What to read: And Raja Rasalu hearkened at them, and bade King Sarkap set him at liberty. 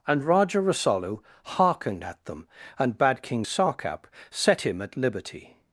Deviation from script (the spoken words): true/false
false